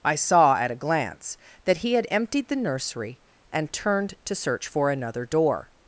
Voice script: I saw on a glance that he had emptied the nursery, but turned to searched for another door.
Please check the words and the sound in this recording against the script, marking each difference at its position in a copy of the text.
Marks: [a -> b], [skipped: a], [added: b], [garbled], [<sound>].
I saw [on -> at] a glance that he had emptied the nursery, [but -> and] turned to [searched -> search] for another door.